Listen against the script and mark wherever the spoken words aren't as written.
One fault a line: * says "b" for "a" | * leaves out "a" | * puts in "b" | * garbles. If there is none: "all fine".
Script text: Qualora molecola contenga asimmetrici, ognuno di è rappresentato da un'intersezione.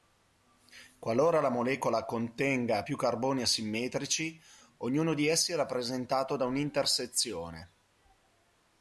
* puts in "la"
* puts in "più carboni"
* puts in "essi"